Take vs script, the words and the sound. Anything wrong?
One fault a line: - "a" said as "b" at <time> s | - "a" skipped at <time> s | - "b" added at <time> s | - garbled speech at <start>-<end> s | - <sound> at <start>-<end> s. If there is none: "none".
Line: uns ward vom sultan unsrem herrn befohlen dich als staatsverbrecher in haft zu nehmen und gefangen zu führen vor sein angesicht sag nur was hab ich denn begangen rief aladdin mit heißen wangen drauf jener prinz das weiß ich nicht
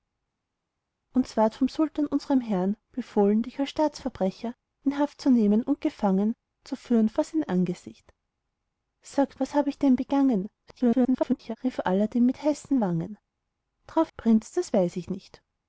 - "nur" skipped at 9.4 s
- garbled speech at 10.7-11.6 s
- "jener" skipped at 14.1 s